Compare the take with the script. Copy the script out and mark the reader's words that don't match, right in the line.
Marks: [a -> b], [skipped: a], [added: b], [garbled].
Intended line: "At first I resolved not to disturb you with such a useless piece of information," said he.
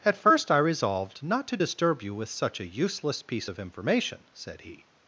"At first I resolved not to disturb you with such a useless piece of information," said he.